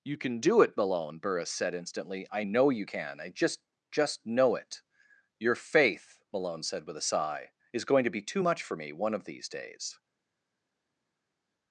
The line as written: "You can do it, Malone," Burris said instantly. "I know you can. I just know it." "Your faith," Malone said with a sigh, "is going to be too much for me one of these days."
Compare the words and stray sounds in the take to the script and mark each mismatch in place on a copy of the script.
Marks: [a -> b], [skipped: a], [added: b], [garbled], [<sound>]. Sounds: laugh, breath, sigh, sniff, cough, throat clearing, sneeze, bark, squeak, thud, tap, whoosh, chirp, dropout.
"You can do it, Malone," Burris said instantly. "I know you can. I just [added: just] know it." "Your faith," Malone said with a sigh, "is going to be too much for me one of these days."